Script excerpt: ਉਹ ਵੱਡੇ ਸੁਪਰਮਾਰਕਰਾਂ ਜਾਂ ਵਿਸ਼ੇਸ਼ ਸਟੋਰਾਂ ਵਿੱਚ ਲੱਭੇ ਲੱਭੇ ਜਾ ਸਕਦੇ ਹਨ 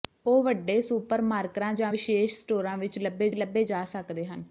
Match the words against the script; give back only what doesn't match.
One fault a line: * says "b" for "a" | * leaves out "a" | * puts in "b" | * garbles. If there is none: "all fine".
all fine